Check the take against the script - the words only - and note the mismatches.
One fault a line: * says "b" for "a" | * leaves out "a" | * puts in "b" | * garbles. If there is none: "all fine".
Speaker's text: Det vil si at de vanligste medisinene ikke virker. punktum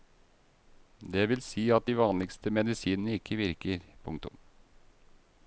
all fine